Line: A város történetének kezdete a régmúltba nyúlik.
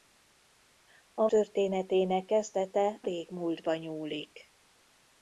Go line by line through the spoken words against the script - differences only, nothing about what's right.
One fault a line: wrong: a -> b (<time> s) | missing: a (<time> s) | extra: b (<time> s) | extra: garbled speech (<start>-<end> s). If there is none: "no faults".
missing: város (1.3 s)
missing: a (3.0 s)